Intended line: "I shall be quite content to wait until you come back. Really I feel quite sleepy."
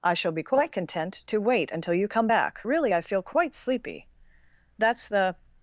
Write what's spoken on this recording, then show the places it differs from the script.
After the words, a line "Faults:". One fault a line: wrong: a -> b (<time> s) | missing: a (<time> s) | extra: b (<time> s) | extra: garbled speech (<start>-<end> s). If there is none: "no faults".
"I shall be quite content to wait until you come back. Really I feel quite sleepy." "That's the
Faults:
extra: That's the (4.8 s)